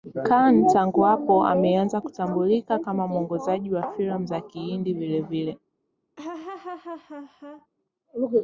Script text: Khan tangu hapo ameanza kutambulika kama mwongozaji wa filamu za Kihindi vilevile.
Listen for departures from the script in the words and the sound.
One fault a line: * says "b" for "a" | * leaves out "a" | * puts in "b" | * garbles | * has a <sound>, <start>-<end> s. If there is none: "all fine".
* has a laugh, 6.2-7.7 s